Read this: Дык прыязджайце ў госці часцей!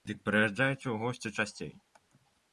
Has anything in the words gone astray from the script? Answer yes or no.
no